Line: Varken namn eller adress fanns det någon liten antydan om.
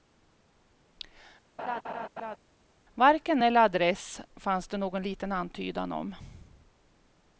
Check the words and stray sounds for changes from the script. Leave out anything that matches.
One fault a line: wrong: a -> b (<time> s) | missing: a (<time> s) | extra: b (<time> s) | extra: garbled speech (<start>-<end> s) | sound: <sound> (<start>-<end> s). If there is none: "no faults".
sound: laugh (1.6-2.4 s)
missing: namn (3.4 s)